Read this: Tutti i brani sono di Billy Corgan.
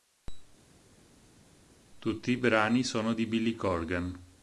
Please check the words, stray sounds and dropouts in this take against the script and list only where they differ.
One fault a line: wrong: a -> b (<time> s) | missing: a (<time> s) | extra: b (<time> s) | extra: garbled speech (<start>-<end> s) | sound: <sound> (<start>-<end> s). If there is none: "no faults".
no faults